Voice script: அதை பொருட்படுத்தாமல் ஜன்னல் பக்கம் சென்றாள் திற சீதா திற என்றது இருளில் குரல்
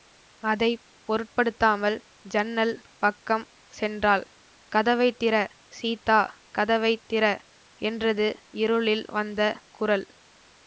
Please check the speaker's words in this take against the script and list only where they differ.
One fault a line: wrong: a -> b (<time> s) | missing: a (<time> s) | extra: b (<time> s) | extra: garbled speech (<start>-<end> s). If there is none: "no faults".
extra: கதவை (4.7 s)
extra: கதவை (6.6 s)
extra: வந்த (9.1 s)